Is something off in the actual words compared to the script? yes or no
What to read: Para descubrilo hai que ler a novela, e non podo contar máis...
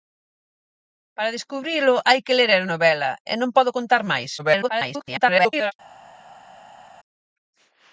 yes